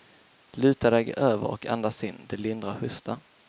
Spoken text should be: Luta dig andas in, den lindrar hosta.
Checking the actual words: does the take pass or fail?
fail